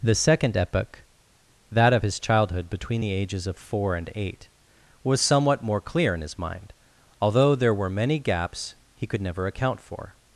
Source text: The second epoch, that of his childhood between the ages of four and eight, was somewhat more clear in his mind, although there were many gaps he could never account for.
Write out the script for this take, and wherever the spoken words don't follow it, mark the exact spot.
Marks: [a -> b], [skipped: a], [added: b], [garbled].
The second epoch, that of his childhood between the ages of four and eight, was somewhat more clear in his mind, although there were many gaps he could never account for.